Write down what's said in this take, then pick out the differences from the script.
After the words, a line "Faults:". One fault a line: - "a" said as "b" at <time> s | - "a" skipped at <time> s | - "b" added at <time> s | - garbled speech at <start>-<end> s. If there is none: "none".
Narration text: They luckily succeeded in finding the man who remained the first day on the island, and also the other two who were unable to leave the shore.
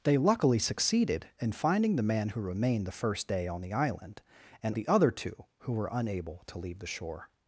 They luckily succeeded in finding the man who remained the first day on the island, and the other two who were unable to leave the shore.
Faults:
- "also" skipped at 4.7 s